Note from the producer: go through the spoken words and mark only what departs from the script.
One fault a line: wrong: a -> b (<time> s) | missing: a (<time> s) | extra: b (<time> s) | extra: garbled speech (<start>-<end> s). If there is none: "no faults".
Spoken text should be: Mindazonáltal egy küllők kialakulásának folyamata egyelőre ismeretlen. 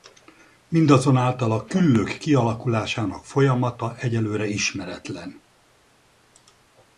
wrong: egy -> a (1.5 s)